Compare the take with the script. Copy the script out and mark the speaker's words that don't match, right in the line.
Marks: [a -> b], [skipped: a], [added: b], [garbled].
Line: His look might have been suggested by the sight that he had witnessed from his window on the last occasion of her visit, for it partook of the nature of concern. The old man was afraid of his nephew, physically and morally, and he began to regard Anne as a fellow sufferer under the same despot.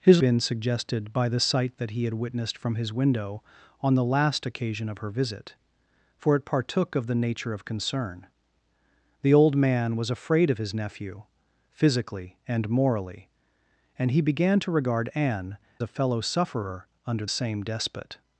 His [skipped: look might have] been suggested by the sight that he had witnessed from his window on the last occasion of her visit, for it partook of the nature of concern. The old man was afraid of his nephew, physically and morally, and he began to regard Anne [skipped: as] a fellow sufferer under [skipped: the] same despot.